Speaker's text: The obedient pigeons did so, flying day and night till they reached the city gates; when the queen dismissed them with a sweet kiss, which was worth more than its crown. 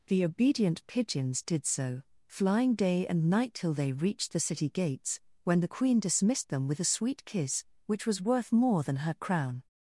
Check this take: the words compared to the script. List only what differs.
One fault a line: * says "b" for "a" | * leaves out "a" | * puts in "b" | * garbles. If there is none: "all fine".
* says "her" for "its"